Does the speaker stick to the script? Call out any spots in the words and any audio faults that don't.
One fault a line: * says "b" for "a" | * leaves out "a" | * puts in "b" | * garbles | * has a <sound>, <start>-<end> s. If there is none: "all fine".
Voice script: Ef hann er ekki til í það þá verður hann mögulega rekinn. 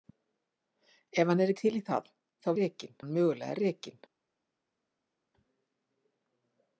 * leaves out "ekki"
* says "rekinn" for "verður"